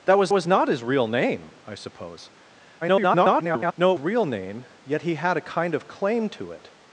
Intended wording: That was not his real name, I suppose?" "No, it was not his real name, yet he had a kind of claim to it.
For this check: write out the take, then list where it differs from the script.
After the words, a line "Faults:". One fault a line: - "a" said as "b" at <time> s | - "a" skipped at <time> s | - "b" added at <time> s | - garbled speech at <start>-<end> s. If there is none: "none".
That was was not his real name, I suppose?" [garbled] "No, it real name, yet he had a kind of claim to it.
Faults:
- "was" added at 0.3 s
- garbled speech at 2.8-3.7 s
- "was not his" skipped at 4.0 s